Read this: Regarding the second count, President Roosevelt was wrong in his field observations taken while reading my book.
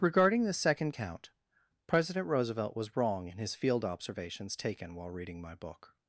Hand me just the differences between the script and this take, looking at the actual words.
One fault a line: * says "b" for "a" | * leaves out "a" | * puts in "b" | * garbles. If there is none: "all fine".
all fine